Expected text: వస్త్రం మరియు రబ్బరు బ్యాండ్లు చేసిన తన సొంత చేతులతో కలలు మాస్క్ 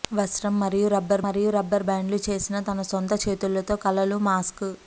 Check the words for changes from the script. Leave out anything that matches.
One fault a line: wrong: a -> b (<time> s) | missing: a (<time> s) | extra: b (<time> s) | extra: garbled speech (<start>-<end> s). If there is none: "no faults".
extra: మరియు రబ్బరు (1.2 s)